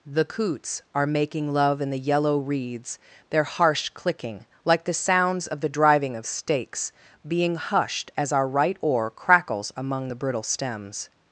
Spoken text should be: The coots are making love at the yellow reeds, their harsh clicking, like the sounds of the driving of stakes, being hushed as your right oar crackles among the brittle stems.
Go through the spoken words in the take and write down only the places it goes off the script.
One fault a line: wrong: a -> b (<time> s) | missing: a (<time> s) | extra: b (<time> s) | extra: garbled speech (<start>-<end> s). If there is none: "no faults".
wrong: at -> in (1.8 s)
wrong: your -> our (8.3 s)